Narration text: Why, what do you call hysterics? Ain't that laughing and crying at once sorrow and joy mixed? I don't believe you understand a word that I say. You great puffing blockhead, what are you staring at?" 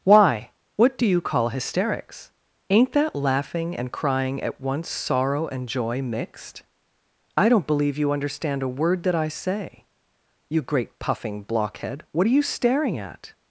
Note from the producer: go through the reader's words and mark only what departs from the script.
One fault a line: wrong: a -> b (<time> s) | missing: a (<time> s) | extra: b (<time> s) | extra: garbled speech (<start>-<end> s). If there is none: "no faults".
no faults